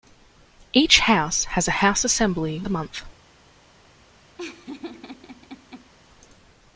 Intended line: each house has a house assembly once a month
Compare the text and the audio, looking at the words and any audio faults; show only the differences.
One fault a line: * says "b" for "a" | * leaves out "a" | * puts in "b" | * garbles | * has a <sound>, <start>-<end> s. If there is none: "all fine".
* leaves out "once"
* has a laugh, 4.4-5.9 s